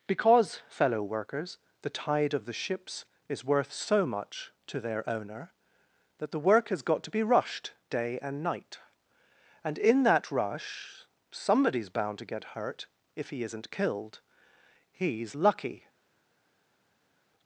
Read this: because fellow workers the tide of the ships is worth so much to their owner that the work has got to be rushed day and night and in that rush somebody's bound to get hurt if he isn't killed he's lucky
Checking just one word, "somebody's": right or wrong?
right